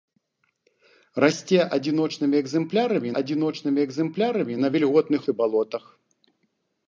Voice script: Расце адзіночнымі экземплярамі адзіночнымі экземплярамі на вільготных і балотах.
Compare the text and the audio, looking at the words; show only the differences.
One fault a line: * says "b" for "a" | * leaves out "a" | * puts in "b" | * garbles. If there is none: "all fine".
all fine